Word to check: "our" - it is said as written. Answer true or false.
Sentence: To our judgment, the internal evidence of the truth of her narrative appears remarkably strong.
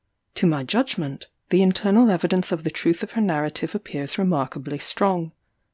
false